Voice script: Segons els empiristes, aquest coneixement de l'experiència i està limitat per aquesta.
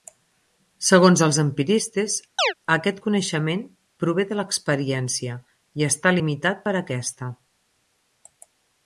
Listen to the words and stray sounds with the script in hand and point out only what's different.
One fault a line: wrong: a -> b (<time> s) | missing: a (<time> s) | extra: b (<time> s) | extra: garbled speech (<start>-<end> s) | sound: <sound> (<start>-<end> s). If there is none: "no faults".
sound: chirp (2.4-2.5 s)
extra: prové (4.0 s)